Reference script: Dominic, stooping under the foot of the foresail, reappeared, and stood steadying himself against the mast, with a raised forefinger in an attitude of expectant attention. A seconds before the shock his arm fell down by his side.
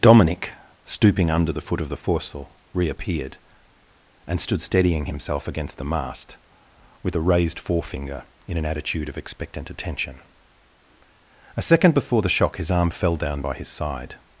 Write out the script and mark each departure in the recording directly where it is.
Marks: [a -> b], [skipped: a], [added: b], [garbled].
Dominic, stooping under the foot of the foresail, reappeared, and stood steadying himself against the mast, with a raised forefinger in an attitude of expectant attention. A [seconds -> second] before the shock his arm fell down by his side.